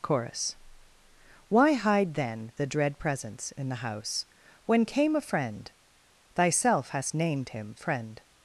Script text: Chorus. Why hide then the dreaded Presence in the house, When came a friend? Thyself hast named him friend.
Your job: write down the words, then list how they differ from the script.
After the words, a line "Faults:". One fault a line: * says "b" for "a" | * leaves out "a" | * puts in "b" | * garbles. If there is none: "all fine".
Chorus. Why hide then the dread Presence in the house, When came a friend? Thyself hast named him friend.
Faults:
* says "dread" for "dreaded"